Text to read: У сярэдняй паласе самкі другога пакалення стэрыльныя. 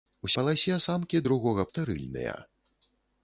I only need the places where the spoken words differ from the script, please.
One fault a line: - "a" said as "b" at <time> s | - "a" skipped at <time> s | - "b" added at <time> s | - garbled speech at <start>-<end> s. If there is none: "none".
- "сярэдняй" skipped at 0.3 s
- "пакалення" skipped at 1.7 s